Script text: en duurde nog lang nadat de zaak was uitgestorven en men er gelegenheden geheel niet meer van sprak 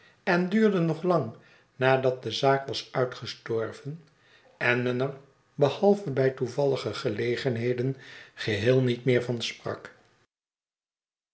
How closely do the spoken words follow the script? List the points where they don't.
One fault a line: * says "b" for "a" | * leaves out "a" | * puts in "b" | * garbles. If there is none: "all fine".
* puts in "behalve bij toevallige"